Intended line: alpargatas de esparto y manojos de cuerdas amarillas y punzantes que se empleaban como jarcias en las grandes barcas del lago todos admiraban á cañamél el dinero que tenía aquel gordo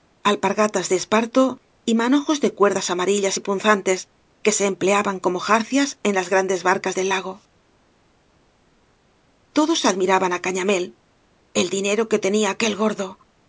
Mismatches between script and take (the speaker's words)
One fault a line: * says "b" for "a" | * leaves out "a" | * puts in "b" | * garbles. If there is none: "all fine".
all fine